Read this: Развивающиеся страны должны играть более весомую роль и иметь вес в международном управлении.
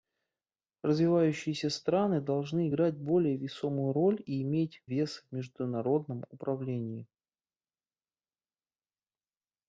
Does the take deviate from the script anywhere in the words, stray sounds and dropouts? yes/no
no